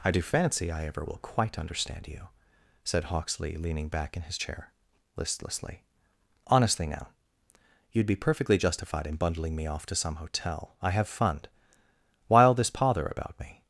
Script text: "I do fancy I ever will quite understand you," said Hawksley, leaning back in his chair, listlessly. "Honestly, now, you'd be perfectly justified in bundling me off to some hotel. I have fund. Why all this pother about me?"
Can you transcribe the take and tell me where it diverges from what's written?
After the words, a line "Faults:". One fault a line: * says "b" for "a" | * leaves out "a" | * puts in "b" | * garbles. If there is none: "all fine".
"I do fancy I ever will quite understand you," said Hawksley, leaning back in his chair, listlessly. "Honestly, now, you'd be perfectly justified in bundling me off to some hotel. I have fund. Why all this pother about me?"
Faults:
all fine